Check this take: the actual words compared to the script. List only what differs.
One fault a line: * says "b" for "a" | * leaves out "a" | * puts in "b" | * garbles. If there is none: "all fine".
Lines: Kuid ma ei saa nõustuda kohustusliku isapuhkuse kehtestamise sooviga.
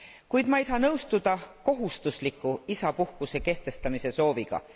all fine